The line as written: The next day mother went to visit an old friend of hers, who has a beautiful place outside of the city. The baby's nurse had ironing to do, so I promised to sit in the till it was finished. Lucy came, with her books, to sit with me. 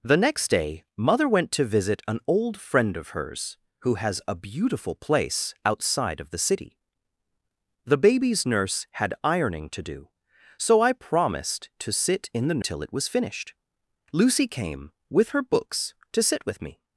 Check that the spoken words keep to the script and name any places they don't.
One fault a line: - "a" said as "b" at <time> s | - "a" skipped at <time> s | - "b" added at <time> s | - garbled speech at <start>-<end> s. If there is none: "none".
none